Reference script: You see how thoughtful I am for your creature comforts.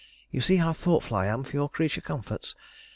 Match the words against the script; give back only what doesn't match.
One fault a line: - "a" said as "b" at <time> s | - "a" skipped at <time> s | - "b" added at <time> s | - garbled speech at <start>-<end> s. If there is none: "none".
none